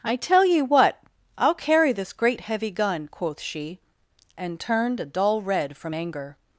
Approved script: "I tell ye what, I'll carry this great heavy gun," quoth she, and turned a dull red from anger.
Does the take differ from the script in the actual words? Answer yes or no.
no